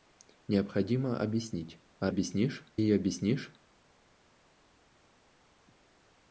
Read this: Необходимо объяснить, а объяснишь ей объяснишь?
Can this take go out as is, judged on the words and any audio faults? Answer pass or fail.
pass